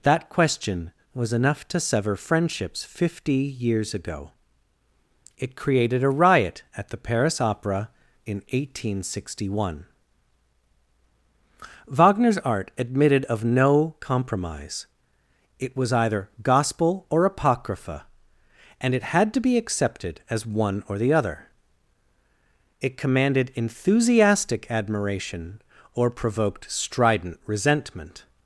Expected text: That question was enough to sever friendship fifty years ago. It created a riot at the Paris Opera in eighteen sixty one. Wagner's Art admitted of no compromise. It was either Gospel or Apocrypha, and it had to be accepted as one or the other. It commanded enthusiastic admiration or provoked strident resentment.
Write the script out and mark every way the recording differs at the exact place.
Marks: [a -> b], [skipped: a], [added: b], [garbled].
That question was enough to sever [friendship -> friendships] fifty years ago. It created a riot at the Paris Opera in eighteen sixty one. Wagner's Art admitted of no compromise. It was either Gospel or Apocrypha, and it had to be accepted as one or the other. It commanded enthusiastic admiration or provoked strident resentment.